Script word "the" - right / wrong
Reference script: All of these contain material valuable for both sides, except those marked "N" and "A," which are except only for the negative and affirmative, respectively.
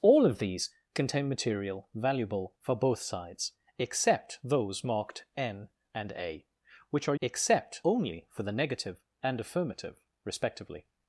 right